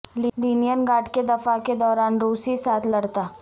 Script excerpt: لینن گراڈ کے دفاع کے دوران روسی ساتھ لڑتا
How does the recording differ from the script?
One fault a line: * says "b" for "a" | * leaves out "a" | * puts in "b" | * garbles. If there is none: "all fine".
all fine